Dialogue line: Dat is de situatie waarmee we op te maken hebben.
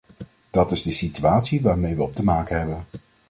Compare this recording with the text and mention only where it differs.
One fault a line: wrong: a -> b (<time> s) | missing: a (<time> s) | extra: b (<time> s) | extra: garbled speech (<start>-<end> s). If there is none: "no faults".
no faults